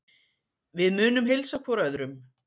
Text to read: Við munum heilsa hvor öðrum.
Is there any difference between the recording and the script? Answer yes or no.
no